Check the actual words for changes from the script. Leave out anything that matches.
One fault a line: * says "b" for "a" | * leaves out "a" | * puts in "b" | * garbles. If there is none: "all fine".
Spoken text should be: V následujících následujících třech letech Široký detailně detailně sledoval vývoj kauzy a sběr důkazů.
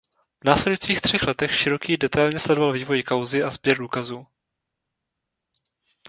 * leaves out "následujících"
* leaves out "detailně"